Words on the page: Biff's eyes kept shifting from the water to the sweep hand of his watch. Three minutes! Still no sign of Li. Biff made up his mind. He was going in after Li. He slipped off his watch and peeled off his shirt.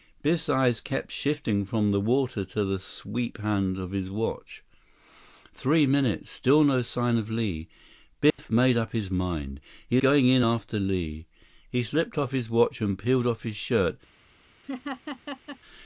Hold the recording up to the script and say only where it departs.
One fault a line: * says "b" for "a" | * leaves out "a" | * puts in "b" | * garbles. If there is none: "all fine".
* leaves out "was"